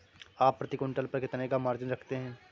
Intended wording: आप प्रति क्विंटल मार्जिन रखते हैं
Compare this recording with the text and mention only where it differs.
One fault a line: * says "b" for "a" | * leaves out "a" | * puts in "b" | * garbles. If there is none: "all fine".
* puts in "पर कितने का"